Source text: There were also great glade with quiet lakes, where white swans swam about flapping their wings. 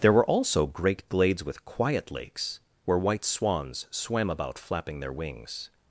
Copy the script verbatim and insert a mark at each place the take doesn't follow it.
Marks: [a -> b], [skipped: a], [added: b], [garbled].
There were also great [glade -> glades] with quiet lakes, where white swans swam about flapping their wings.